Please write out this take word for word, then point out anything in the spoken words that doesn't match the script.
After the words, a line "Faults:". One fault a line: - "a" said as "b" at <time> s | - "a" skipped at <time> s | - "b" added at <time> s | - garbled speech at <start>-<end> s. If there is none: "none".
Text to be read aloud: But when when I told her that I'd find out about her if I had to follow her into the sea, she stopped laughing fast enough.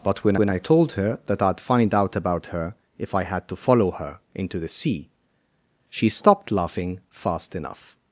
But when when I told her that I'd find out about her if I had to follow her into the sea, she stopped laughing fast enough.
Faults:
none